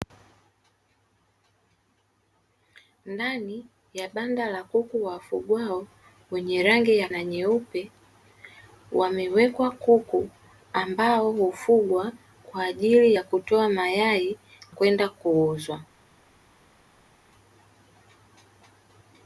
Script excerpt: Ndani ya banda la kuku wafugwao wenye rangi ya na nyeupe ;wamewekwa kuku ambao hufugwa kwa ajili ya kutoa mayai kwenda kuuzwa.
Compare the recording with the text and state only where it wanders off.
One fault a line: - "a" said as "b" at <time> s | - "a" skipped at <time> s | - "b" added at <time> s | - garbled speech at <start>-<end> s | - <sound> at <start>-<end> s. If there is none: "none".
none